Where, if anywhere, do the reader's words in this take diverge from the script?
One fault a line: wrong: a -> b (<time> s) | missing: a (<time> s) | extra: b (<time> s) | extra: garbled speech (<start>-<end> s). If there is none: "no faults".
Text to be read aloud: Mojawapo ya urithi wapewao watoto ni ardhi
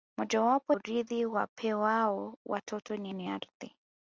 missing: ya (0.8 s)
extra: ni (3.1 s)